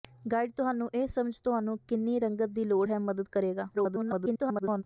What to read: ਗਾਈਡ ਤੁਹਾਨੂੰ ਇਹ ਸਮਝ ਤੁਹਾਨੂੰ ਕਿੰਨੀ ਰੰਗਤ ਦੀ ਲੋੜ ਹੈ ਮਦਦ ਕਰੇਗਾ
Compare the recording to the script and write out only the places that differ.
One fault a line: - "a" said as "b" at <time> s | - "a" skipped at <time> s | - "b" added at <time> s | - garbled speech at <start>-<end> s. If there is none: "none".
- garbled speech at 3.7-4.8 s